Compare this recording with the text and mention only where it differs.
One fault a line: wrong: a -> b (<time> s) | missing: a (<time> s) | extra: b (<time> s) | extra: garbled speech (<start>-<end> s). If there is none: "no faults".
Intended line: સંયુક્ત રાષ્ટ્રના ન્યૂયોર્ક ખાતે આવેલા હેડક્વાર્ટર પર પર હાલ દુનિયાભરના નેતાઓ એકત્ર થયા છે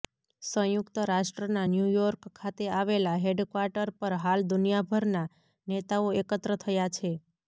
missing: પર (4.2 s)